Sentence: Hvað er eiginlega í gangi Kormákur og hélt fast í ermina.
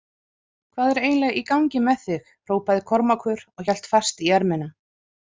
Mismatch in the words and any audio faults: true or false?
true